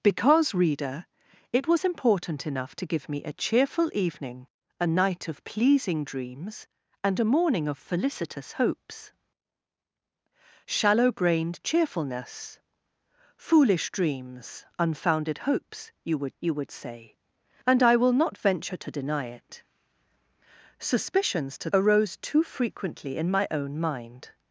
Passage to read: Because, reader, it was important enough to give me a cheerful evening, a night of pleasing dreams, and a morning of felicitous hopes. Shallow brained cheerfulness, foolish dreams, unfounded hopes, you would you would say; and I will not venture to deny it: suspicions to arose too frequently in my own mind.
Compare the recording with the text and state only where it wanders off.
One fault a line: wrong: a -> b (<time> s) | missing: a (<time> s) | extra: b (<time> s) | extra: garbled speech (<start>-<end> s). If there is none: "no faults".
no faults